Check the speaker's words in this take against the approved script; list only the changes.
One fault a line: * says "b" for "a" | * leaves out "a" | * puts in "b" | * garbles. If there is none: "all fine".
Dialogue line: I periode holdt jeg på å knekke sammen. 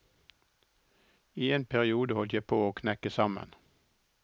* puts in "en"